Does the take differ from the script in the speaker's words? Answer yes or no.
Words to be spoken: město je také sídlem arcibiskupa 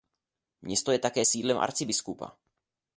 no